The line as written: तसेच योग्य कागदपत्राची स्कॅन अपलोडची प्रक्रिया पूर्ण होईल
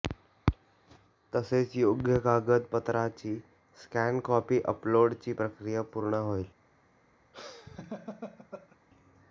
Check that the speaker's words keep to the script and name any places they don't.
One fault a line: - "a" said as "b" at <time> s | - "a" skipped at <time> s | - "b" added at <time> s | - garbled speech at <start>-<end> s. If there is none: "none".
- "कॉपी" added at 4.2 s